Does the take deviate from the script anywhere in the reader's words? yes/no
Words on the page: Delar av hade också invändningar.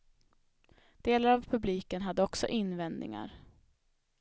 yes